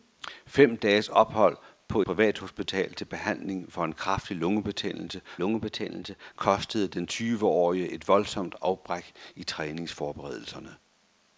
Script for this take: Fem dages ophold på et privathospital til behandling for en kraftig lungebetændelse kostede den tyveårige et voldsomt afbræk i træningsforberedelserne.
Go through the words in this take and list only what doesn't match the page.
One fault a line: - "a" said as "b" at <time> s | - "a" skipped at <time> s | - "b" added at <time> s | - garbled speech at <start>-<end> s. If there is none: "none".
- "et" skipped at 2.0 s
- "lungebetændelse" added at 5.4 s